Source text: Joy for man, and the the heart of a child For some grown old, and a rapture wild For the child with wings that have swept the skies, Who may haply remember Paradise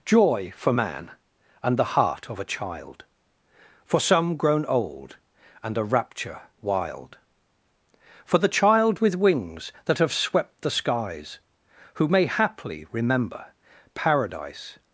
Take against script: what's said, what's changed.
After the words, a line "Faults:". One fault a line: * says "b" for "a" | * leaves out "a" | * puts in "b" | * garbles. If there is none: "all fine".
Joy for man, and the heart of a child For some grown old, and a rapture wild For the child with wings that have swept the skies, Who may haply remember Paradise
Faults:
* leaves out "the"